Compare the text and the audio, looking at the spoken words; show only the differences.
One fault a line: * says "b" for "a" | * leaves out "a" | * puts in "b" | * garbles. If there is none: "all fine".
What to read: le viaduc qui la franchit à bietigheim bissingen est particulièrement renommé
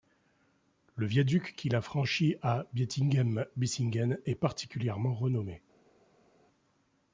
all fine